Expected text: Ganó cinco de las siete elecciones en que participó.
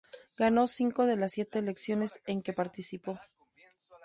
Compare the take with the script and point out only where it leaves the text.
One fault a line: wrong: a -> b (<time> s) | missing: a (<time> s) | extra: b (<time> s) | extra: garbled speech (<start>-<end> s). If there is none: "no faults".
no faults